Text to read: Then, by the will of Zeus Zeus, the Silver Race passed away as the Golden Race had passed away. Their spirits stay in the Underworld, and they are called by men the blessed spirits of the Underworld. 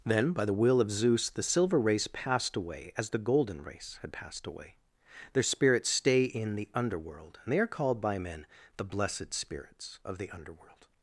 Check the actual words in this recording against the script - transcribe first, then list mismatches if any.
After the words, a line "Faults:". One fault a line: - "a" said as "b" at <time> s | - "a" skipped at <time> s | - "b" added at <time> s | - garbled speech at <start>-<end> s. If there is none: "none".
Then, by the will of Zeus, the Silver Race passed away as the Golden Race had passed away. Their spirits stay in the Underworld, and they are called by men the blessed spirits of the Underworld.
Faults:
- "Zeus" skipped at 1.3 s